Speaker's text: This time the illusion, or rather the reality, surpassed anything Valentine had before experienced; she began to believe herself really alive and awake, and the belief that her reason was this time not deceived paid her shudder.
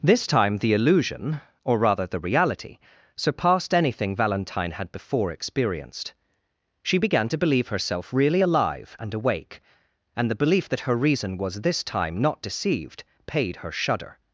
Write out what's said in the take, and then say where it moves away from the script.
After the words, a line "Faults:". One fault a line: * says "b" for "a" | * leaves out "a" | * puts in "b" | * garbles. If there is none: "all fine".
This time the illusion, or rather the reality, surpassed anything Valentine had before experienced; she began to believe herself really alive and awake, and the belief that her reason was this time not deceived paid her shudder.
Faults:
all fine